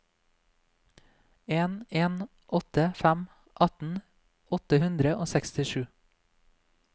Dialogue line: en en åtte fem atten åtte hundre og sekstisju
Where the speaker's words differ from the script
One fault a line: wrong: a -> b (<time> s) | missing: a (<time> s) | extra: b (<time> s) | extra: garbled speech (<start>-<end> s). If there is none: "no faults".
no faults